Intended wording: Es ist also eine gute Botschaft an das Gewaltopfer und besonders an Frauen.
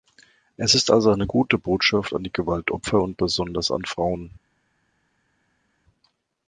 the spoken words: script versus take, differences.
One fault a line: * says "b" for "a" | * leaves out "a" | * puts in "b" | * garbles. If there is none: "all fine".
* says "die" for "das"